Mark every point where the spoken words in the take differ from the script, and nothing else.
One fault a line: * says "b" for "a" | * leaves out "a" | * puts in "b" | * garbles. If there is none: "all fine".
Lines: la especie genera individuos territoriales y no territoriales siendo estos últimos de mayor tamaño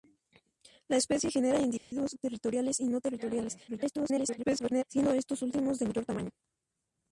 * garbles